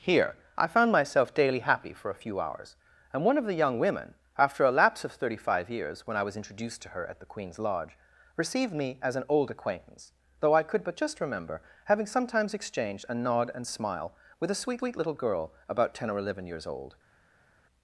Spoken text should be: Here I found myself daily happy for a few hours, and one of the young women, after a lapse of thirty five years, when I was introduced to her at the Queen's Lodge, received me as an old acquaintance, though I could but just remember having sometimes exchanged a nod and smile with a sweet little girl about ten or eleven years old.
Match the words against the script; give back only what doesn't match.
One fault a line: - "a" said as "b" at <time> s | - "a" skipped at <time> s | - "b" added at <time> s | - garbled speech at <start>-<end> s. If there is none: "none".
- "sweet" added at 14.8 s